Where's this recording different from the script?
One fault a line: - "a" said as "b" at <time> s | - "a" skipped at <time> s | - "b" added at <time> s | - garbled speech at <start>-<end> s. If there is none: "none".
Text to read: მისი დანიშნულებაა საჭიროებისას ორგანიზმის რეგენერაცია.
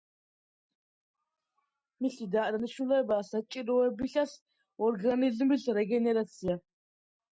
none